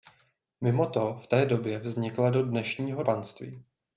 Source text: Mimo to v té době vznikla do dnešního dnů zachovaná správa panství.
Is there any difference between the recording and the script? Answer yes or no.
yes